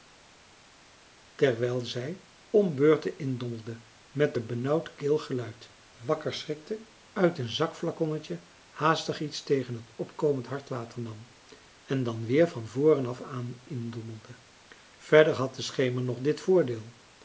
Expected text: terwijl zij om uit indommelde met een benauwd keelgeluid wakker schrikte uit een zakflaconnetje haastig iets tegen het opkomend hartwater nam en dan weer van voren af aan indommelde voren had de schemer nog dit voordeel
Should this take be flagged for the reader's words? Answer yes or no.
yes